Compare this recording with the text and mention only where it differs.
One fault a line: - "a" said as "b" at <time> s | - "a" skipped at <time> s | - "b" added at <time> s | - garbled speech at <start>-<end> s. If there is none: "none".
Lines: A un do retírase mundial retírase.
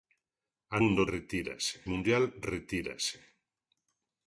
none